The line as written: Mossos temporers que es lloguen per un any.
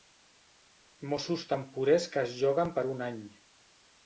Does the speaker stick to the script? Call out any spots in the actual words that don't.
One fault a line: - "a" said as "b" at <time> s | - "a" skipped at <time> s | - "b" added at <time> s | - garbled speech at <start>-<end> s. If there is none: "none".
none